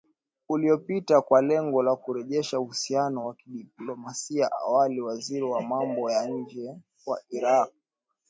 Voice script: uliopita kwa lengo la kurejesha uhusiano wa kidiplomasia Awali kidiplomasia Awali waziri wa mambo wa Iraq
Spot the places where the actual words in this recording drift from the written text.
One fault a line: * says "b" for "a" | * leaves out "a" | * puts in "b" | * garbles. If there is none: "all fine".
* leaves out "kidiplomasia Awali"
* puts in "ya nje"